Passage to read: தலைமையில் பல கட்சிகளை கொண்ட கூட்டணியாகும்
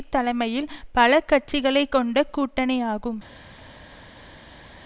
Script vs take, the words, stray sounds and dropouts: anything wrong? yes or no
no